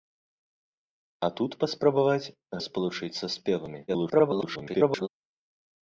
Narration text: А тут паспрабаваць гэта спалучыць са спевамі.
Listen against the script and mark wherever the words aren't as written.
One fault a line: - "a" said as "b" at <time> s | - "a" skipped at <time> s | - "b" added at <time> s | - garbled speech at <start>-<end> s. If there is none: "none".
- "гэта" skipped at 2.3 s
- garbled speech at 3.9-5.1 s